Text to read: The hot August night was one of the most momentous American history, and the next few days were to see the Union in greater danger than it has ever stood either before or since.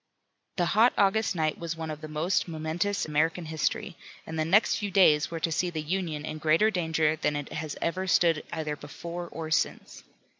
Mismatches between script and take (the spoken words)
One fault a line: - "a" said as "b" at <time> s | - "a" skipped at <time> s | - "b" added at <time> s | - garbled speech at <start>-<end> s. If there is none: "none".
none